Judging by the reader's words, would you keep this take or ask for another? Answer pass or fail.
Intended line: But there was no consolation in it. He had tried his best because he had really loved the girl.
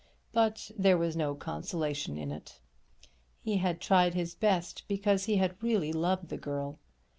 pass